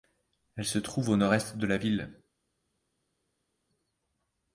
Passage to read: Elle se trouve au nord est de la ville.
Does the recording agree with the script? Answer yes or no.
yes